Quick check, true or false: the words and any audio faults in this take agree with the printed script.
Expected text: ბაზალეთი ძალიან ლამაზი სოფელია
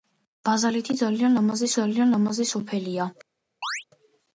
false